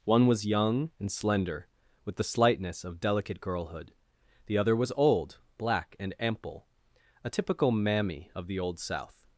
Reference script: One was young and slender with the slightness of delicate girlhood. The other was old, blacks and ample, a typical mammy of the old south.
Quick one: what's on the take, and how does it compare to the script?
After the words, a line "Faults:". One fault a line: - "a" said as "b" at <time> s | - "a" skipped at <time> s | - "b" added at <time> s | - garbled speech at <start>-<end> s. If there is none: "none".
One was young and slender with the slightness of delicate girlhood. The other was old, black and ample, a typical mammy of the old south.
Faults:
- "blacks" said as "black" at 5.6 s